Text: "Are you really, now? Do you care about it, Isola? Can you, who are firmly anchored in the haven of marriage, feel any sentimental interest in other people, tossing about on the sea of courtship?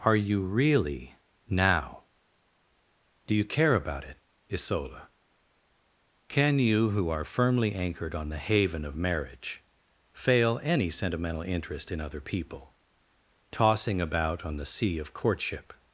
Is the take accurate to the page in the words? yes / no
no